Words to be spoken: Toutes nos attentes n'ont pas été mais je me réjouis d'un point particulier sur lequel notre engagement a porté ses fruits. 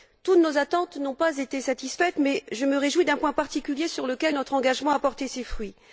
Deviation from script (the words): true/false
true